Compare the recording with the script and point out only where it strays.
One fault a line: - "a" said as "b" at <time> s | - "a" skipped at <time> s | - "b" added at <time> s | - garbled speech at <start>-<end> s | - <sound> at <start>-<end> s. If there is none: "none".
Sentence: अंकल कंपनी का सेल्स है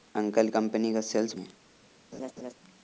- laugh at 2.1-2.5 s